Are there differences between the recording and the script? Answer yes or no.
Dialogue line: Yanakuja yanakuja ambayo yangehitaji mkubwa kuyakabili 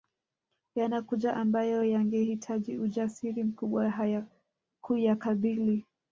yes